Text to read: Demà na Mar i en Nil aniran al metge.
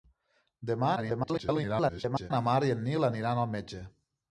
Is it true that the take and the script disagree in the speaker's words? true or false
true